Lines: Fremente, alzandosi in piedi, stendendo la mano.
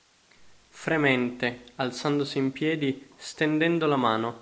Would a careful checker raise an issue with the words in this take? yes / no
no